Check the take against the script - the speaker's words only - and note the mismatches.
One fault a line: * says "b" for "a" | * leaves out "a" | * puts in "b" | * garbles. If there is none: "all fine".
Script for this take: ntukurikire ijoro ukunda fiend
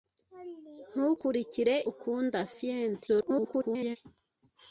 * leaves out "ijoro"
* garbles